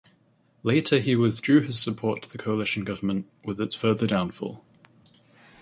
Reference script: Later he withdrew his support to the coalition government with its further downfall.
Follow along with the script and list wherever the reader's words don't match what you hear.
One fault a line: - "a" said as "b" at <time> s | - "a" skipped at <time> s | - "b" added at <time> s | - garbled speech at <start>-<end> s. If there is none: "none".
none